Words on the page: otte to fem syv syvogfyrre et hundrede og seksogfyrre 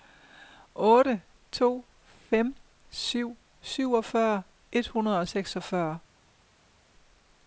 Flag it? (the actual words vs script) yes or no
no